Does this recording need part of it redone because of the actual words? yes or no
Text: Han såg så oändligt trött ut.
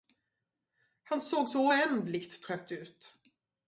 no